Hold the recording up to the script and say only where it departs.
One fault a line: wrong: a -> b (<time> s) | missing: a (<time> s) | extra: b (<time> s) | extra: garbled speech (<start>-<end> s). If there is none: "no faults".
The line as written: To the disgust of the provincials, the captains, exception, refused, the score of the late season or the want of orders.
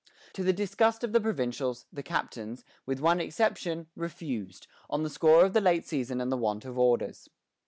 extra: with one (2.9 s)
extra: on (4.9 s)
wrong: or -> and (6.2 s)